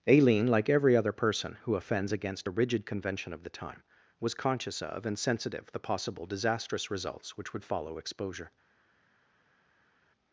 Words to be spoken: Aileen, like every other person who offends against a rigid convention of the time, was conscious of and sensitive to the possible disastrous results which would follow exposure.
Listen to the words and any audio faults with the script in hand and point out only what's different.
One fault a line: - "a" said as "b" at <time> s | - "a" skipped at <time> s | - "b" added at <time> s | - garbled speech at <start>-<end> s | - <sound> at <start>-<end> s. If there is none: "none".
- "to" skipped at 5.7 s